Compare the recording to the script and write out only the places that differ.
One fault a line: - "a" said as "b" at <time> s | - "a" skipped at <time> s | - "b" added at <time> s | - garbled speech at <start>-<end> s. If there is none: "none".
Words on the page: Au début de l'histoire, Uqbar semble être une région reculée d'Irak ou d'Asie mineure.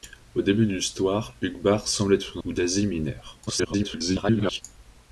- "région reculée d'Irak" skipped at 2.4 s
- garbled speech at 3.5-4.6 s